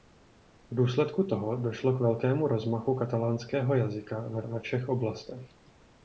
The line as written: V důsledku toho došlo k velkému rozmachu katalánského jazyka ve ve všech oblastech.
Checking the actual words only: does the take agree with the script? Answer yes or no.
yes